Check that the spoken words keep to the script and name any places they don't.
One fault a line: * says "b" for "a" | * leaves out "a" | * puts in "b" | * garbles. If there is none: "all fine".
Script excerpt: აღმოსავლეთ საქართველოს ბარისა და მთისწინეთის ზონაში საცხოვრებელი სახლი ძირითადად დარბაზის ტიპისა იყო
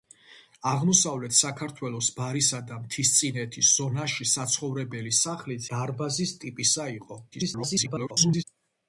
* leaves out "ძირითადად"
* garbles